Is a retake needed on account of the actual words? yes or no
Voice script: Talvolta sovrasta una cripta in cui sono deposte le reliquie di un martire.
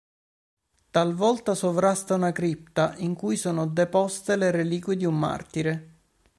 no